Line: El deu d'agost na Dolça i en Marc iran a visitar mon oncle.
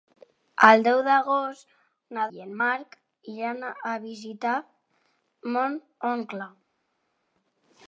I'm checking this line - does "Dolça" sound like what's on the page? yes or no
no